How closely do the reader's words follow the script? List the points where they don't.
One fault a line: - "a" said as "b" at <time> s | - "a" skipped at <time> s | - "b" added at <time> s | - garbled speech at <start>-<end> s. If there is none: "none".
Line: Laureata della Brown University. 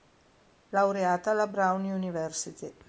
- "della" said as "alla" at 1.3 s